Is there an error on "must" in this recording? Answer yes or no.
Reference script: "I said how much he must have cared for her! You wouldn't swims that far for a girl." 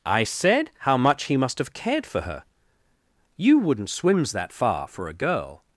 no